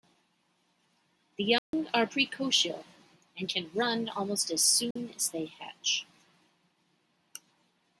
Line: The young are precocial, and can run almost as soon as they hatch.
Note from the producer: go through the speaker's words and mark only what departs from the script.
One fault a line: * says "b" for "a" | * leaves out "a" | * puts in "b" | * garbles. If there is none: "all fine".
all fine